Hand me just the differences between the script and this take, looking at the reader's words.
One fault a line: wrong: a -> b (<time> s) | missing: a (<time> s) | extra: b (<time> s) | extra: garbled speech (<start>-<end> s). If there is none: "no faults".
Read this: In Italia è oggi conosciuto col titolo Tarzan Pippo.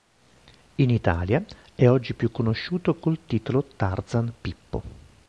extra: più (2.1 s)